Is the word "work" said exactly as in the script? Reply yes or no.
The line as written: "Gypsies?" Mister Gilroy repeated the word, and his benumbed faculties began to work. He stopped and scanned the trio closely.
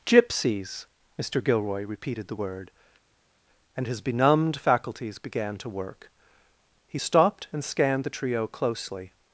yes